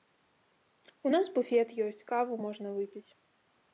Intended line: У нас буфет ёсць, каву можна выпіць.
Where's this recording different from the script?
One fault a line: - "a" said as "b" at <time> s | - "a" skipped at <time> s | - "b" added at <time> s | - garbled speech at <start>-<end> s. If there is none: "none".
none